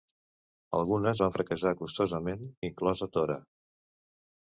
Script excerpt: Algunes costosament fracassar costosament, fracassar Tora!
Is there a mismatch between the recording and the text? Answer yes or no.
yes